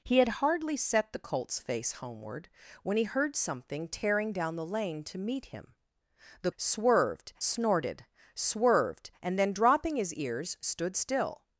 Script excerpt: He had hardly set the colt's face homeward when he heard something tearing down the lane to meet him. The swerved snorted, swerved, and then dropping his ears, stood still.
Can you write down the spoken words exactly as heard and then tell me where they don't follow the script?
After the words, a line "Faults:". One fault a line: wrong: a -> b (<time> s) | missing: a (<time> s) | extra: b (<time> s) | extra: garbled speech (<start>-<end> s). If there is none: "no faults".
He had hardly set the colt's face homeward when he heard something tearing down the lane to meet him. The swerved snorted, swerved, and then dropping his ears, stood still.
Faults:
no faults